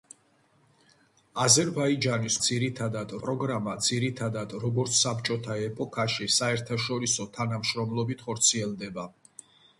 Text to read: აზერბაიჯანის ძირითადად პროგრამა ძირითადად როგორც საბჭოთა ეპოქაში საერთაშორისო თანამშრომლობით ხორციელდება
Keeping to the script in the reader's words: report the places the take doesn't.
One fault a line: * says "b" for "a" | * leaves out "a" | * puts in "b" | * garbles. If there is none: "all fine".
all fine